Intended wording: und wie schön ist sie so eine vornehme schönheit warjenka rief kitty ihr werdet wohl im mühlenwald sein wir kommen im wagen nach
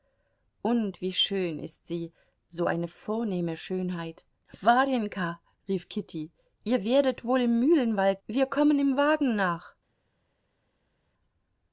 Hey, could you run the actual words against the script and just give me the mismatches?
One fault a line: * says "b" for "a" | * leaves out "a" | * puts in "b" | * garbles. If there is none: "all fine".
* leaves out "sein"